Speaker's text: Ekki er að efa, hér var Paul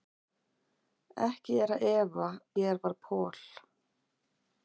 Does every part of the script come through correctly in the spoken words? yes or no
yes